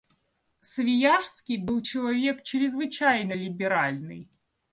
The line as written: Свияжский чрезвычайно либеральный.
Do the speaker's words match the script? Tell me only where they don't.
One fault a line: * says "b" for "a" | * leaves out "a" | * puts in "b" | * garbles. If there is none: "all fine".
* puts in "был человек"